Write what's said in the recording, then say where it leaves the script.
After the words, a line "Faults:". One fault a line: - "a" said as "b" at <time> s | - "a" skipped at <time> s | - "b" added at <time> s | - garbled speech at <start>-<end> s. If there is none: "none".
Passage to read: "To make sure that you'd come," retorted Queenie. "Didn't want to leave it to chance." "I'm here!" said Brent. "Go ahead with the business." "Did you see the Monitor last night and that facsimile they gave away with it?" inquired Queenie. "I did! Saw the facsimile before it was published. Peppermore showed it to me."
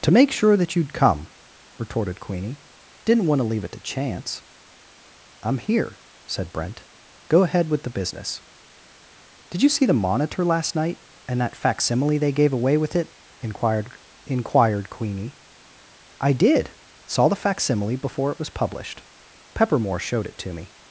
"To make sure that you'd come," retorted Queenie. "Didn't want to leave it to chance." "I'm here!" said Brent. "Go ahead with the business." "Did you see the Monitor last night and that facsimile they gave away with it?" inquired inquired Queenie. "I did! Saw the facsimile before it was published. Peppermore showed it to me."
Faults:
- "inquired" added at 14.2 s